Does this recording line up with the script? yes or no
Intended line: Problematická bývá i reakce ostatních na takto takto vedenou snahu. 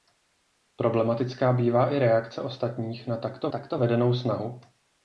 yes